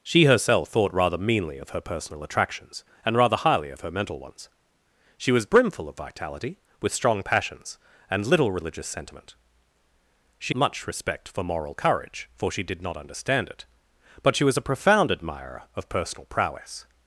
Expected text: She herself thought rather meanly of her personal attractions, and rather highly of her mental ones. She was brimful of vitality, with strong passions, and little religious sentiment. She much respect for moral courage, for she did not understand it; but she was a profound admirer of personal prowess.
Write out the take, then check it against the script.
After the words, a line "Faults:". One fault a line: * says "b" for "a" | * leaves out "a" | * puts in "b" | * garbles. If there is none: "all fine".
She herself thought rather meanly of her personal attractions, and rather highly of her mental ones. She was brimful of vitality, with strong passions, and little religious sentiment. She much respect for moral courage, for she did not understand it; but she was a profound admirer of personal prowess.
Faults:
all fine